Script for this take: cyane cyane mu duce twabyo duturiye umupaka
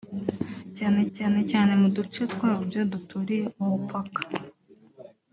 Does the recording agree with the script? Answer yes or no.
no